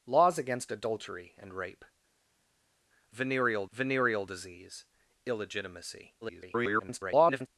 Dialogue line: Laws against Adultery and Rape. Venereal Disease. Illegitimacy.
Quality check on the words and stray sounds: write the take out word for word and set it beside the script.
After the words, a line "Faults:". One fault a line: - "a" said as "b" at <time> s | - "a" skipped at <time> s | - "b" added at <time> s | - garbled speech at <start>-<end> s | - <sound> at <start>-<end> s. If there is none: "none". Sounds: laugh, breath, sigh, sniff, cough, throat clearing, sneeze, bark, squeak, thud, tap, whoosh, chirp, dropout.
Laws against Adultery and Rape. Venereal venereal Disease. Illegitimacy. [garbled]
Faults:
- "venereal" added at 3.7 s
- garbled speech at 6.2-7.5 s